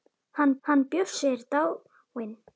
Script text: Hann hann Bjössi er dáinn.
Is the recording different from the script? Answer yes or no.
no